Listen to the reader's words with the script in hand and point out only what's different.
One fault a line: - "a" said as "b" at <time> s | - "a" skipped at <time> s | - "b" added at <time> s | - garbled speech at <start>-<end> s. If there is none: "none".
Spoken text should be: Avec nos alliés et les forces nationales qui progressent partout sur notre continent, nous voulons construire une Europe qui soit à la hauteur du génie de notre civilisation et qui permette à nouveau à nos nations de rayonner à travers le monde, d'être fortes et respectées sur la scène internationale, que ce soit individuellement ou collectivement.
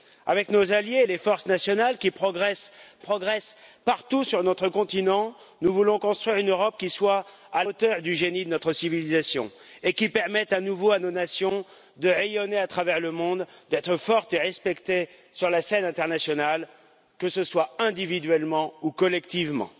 - "progressent" added at 3.0 s
- "la" skipped at 7.6 s